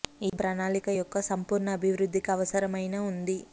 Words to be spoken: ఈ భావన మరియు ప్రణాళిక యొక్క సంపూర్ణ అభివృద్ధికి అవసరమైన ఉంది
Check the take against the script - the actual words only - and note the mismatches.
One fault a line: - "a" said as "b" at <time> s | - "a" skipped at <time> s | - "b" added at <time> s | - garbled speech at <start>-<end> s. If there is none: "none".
- "భావన మరియు" skipped at 0.4 s